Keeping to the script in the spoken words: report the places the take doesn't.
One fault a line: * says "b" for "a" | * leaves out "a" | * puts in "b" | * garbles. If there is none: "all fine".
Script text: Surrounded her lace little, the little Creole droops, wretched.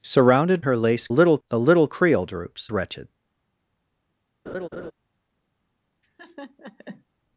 all fine